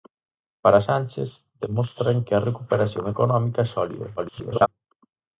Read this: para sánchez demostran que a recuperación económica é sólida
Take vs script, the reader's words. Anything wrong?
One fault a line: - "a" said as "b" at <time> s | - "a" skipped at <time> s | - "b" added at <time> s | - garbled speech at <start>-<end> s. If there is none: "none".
- garbled speech at 4.2-4.7 s